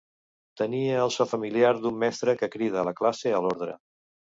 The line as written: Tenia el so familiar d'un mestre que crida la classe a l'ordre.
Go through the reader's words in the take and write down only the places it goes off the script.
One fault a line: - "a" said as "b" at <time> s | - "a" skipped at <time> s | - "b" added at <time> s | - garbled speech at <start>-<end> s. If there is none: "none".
none